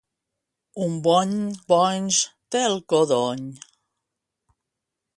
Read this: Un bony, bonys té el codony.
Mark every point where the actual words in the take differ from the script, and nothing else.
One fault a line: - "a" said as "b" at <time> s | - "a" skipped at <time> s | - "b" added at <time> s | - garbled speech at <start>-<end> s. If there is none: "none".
none